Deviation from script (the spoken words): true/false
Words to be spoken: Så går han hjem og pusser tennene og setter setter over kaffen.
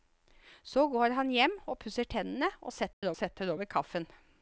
false